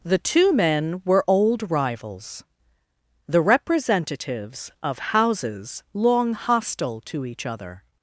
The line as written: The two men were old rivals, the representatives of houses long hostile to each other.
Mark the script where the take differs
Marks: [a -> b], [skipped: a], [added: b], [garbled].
The two men were old rivals, the representatives of houses long hostile to each other.